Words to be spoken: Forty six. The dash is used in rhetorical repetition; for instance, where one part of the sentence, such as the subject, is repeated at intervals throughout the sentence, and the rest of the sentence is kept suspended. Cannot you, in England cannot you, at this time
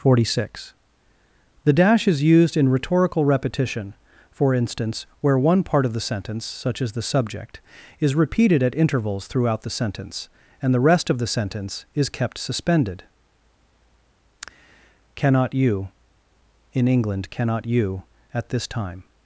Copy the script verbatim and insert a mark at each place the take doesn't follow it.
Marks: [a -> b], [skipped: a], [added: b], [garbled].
Forty six. The dash is used in rhetorical repetition; for instance, where one part of the sentence, such as the subject, is repeated at intervals throughout the sentence, and the rest of the sentence is kept suspended. Cannot you, in England cannot you, at this time